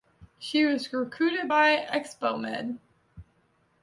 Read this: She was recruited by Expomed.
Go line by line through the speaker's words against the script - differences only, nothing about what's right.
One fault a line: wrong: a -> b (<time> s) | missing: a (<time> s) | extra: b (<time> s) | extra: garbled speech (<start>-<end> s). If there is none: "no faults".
no faults